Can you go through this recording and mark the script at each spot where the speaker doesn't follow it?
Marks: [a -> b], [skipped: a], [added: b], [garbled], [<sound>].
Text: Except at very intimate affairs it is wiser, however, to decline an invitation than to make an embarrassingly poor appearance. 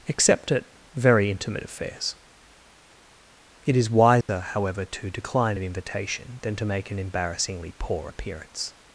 Except at very intimate affairs it is wiser, [dropout] however, to decline an invitation than to make an embarrassingly poor appearance.